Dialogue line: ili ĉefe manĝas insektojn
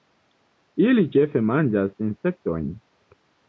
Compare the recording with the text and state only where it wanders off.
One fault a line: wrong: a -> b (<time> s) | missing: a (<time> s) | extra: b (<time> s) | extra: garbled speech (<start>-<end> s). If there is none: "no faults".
no faults